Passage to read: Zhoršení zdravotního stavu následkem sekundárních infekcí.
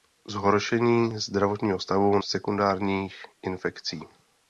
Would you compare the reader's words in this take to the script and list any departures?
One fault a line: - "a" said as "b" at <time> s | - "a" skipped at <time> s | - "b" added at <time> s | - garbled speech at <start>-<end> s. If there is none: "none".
- "následkem" skipped at 2.2 s